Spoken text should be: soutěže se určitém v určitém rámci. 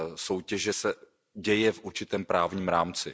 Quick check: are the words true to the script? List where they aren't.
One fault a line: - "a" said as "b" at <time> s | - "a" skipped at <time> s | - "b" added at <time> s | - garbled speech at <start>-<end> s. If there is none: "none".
- "určitém" said as "děje" at 1.3 s
- "právním" added at 2.2 s